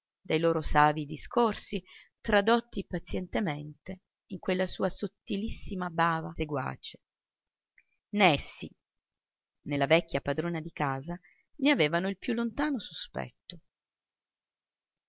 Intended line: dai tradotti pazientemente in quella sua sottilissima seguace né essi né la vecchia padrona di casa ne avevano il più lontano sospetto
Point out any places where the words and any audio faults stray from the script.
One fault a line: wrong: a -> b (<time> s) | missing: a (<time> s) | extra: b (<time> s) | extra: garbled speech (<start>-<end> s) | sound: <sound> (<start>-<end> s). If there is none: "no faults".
extra: loro savii discorsi (0.4 s)
extra: bava (5.9 s)